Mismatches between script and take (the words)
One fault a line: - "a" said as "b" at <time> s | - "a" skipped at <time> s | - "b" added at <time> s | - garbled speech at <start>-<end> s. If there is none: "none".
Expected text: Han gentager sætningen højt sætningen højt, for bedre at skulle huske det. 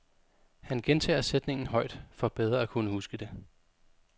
- "sætningen højt" skipped at 2.0 s
- "skulle" said as "kunne" at 2.7 s